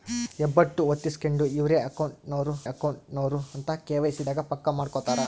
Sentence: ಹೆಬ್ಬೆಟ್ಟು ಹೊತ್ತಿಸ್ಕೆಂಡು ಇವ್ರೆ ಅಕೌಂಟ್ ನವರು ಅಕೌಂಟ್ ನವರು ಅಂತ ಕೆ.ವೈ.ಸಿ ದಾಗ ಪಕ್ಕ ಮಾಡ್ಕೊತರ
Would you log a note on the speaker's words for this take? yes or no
no